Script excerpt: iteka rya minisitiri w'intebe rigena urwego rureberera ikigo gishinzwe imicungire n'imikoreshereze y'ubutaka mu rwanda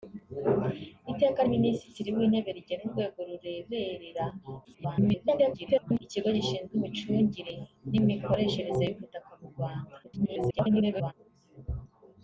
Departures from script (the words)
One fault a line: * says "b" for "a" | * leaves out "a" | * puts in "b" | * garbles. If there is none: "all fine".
* leaves out "rya"
* garbles
* garbles